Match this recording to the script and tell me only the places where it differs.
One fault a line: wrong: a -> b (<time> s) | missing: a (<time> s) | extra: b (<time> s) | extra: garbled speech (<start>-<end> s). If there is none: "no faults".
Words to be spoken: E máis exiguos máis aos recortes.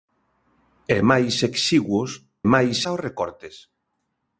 no faults